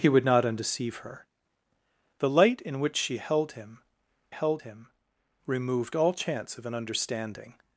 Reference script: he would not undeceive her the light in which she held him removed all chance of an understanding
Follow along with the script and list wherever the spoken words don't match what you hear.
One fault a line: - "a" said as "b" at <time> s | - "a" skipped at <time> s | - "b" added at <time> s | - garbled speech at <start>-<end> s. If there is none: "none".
- "held him" added at 4.3 s